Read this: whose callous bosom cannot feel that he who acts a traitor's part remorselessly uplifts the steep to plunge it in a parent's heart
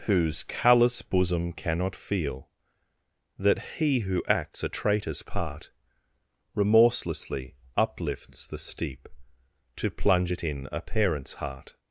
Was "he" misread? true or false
false